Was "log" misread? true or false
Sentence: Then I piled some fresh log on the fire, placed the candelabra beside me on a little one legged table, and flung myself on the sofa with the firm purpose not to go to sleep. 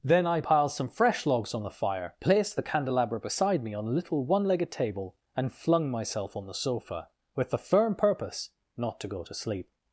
true